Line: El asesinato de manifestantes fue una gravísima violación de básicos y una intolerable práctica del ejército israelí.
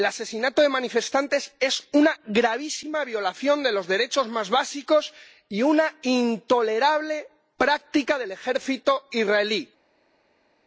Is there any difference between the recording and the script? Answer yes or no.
yes